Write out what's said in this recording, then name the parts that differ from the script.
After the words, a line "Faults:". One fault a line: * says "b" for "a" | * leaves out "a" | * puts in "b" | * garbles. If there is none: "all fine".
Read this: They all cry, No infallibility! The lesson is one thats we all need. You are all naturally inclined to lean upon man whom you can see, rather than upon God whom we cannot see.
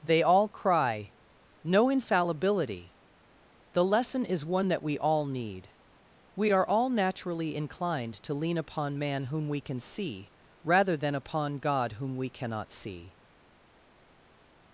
They all cry, No infallibility! The lesson is one that we all need. We are all naturally inclined to lean upon man whom we can see, rather than upon God whom we cannot see.
Faults:
* says "that" for "thats"
* says "We" for "You"
* says "we" for "you"